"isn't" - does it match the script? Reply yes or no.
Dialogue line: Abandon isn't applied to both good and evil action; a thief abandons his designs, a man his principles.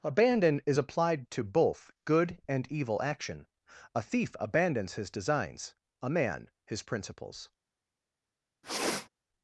no